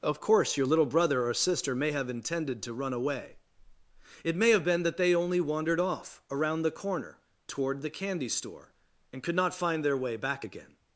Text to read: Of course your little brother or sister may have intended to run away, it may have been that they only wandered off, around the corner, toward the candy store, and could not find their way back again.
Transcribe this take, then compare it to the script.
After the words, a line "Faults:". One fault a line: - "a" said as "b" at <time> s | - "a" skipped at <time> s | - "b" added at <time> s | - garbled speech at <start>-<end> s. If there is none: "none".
Of course your little brother or sister may have intended to run away, it may have been that they only wandered off, around the corner, toward the candy store, and could not find their way back again.
Faults:
none